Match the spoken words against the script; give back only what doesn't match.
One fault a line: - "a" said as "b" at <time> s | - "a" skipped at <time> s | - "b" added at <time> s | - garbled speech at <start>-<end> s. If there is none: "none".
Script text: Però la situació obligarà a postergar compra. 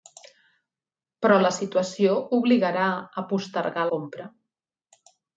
none